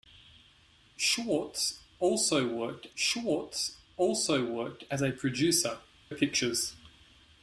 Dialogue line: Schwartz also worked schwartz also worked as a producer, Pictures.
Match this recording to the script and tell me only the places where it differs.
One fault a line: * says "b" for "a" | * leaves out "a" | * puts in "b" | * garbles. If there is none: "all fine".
all fine